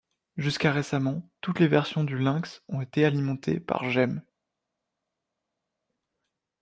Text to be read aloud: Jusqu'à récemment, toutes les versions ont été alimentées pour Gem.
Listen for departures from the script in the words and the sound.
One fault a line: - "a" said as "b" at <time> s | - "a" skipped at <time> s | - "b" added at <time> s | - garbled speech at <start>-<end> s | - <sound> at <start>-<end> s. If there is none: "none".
- "du Lynx" added at 2.0 s
- "pour" said as "par" at 3.6 s